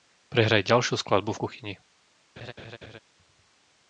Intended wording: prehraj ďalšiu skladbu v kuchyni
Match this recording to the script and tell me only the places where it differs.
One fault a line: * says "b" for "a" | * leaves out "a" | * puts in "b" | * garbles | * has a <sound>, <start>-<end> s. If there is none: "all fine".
* has a laugh, 2.4-3.0 s